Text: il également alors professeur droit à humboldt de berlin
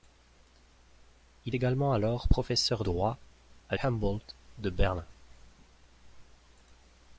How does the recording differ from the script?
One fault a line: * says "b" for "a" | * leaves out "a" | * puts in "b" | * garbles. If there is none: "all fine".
all fine